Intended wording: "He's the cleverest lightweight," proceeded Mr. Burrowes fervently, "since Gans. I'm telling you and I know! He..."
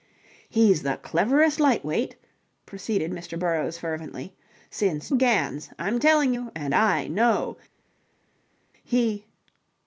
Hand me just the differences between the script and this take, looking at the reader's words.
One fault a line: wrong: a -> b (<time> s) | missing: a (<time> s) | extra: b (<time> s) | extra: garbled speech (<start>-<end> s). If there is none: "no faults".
no faults